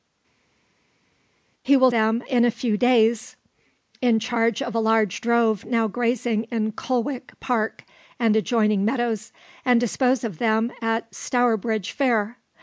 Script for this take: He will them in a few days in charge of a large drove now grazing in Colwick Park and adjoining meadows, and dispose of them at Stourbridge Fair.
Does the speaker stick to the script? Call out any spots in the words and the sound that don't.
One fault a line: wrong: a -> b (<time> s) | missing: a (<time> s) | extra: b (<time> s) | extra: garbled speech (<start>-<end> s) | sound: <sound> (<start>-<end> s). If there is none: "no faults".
no faults